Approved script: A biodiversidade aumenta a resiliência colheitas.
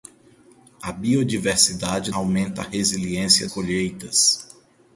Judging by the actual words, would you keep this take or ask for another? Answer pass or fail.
pass